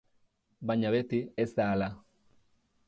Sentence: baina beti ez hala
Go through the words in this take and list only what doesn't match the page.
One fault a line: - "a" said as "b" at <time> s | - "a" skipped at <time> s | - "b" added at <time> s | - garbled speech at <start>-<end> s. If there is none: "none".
- "da" added at 1.6 s